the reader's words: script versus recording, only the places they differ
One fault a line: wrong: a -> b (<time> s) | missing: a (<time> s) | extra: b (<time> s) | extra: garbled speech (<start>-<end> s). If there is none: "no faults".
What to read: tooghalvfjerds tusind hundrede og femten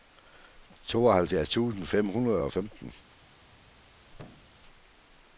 extra: fem (1.9 s)